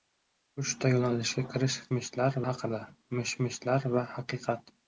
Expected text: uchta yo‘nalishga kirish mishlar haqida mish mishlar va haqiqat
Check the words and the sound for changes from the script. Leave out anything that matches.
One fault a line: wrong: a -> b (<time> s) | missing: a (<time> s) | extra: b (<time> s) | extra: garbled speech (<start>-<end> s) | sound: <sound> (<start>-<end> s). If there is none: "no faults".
no faults